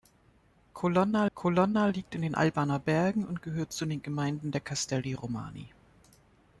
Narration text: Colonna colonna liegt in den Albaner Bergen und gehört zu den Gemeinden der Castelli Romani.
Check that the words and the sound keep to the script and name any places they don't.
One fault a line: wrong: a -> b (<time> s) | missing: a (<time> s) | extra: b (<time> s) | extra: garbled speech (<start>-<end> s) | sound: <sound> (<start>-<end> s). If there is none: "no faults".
no faults